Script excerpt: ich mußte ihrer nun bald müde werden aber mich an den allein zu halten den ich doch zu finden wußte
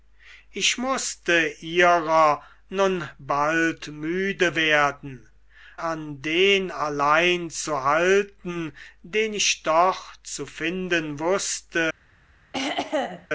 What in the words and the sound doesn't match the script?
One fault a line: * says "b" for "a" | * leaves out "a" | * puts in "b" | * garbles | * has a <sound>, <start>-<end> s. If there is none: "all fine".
* leaves out "aber mich"
* has a throat clearing, 12.5-13.3 s